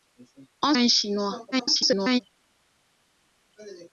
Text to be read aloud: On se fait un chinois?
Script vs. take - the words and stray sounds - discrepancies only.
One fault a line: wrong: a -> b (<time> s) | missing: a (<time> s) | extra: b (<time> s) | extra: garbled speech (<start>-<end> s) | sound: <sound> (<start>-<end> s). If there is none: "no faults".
missing: se fait (0.7 s)
extra: garbled speech (1.5-2.2 s)